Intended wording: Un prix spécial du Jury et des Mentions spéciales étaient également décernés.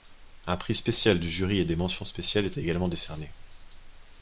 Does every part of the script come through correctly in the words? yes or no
yes